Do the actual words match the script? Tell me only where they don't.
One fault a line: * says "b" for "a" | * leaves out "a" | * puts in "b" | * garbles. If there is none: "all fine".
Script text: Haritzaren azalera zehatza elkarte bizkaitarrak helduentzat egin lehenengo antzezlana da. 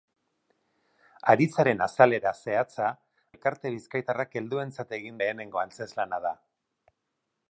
all fine